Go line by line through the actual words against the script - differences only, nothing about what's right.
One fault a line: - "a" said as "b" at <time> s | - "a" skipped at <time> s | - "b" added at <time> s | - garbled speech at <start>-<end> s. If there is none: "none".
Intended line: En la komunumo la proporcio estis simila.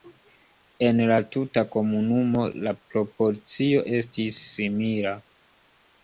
- "tuta" added at 1.3 s